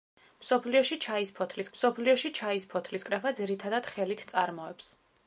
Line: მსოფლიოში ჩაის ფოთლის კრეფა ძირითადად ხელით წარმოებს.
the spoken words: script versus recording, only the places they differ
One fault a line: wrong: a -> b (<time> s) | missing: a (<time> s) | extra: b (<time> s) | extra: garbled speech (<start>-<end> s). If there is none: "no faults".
extra: მსოფლიოში ჩაის ფოთლის (1.8 s)